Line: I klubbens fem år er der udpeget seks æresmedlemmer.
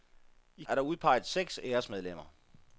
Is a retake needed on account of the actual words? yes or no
yes